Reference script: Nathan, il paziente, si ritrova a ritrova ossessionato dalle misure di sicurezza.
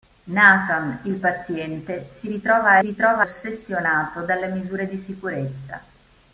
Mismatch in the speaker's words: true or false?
false